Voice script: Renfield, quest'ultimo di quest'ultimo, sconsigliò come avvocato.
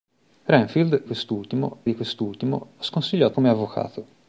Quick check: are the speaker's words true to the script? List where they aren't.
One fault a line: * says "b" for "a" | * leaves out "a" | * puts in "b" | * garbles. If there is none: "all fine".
all fine